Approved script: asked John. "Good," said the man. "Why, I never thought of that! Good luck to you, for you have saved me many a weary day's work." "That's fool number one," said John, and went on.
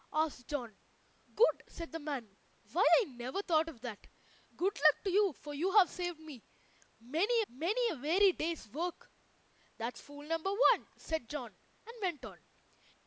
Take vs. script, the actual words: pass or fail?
fail